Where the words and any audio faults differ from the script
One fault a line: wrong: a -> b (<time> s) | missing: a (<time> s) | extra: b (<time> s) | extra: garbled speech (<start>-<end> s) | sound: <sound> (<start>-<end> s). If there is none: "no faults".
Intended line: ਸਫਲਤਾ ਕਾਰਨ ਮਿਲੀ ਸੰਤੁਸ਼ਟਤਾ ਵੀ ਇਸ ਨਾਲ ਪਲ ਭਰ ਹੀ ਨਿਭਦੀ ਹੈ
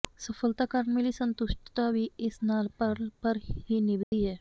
sound: dropout (4.0-4.1 s)